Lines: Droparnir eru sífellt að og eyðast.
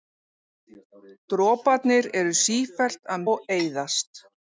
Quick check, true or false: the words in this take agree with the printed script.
true